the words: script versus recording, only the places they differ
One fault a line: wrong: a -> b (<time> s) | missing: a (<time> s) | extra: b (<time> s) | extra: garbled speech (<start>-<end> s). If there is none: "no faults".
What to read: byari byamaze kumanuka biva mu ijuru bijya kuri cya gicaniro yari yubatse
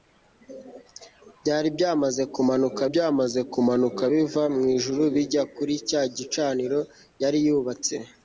extra: byamaze kumanuka (2.9 s)